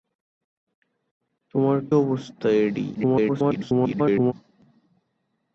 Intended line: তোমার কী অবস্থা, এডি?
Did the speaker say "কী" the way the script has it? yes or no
no